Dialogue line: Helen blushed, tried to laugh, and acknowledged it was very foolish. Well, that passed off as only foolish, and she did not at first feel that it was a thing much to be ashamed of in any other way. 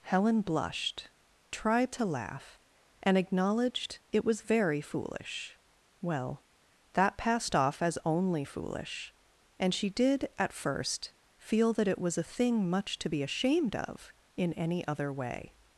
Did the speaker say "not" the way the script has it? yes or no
no